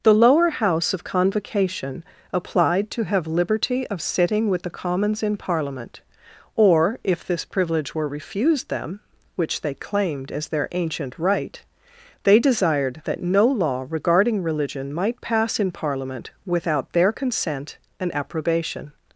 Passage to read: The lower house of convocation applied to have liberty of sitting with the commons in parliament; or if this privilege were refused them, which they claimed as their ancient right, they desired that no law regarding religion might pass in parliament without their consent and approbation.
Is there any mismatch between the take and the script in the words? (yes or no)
no